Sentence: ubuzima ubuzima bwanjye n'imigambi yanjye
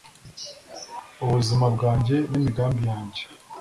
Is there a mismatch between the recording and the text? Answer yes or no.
yes